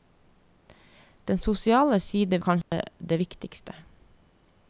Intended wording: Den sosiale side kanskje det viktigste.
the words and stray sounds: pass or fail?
fail